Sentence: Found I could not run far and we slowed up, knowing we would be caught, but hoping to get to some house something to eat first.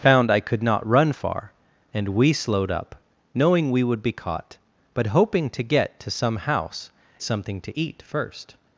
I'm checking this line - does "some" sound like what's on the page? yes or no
yes